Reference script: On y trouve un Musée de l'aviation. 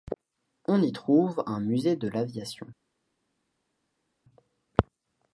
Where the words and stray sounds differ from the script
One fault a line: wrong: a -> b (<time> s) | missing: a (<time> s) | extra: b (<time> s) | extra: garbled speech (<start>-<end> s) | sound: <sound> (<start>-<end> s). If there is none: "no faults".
no faults